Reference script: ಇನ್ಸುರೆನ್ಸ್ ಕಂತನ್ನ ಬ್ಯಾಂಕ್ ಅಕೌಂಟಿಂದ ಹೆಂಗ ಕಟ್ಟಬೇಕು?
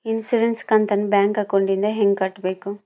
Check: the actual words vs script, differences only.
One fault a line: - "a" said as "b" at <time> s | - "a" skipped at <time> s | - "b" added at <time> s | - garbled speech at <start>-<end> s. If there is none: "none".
none